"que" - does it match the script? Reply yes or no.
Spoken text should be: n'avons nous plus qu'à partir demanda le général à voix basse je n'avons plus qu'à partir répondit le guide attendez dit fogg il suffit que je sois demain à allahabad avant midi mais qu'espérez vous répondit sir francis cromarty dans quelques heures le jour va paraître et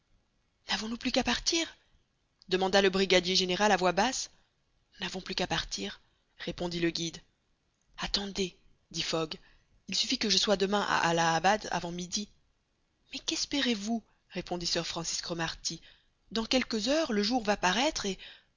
yes